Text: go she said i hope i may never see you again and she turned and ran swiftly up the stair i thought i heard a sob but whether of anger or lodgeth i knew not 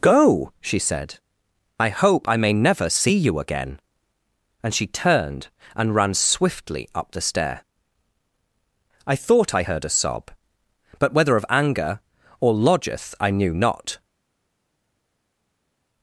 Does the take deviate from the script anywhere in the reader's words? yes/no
no